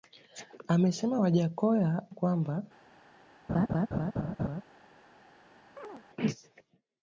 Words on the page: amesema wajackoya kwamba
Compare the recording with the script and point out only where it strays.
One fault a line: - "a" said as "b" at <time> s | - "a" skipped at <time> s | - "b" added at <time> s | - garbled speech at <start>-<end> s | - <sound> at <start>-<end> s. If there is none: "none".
- laugh at 3.5-4.6 s
- chirp at 5.8-6.0 s